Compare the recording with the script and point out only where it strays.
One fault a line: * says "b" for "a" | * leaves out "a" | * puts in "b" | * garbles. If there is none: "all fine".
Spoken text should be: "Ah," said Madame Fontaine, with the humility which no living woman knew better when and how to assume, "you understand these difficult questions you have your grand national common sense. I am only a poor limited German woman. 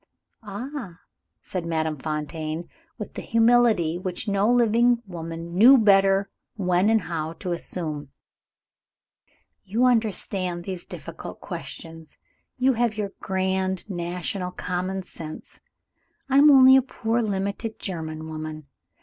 all fine